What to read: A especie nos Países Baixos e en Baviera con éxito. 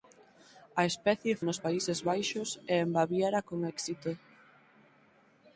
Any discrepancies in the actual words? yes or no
no